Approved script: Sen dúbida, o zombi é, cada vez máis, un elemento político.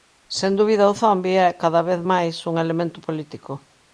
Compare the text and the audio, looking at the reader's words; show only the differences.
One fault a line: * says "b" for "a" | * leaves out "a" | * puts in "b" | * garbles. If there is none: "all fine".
all fine